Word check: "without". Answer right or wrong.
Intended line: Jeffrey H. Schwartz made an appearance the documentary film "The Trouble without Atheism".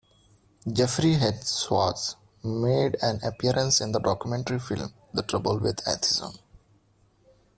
wrong